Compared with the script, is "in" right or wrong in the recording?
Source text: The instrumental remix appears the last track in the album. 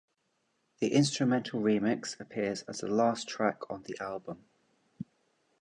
wrong